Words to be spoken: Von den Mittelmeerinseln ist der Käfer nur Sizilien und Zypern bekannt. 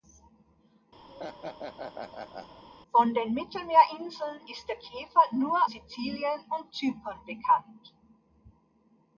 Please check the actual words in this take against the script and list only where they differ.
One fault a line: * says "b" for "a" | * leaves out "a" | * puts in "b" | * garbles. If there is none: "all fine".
all fine